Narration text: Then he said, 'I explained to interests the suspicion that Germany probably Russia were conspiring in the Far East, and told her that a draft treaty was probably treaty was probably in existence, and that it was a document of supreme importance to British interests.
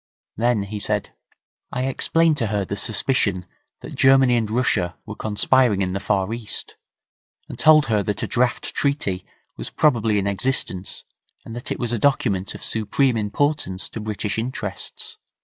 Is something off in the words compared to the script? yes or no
yes